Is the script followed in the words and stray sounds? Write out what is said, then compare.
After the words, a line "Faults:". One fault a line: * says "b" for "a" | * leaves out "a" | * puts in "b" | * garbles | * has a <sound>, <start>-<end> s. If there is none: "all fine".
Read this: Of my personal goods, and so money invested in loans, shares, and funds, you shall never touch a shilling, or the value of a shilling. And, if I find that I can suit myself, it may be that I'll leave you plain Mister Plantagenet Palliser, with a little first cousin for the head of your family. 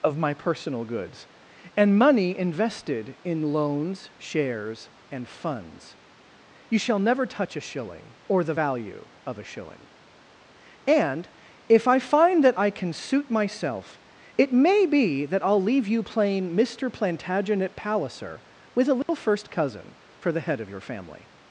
Of my personal goods, and money invested in loans, shares, and funds, you shall never touch a shilling, or the value of a shilling. And, if I find that I can suit myself, it may be that I'll leave you plain Mister Plantagenet Palliser, with a little first cousin for the head of your family.
Faults:
* leaves out "so"
* has a dropout, 19.0-19.1 s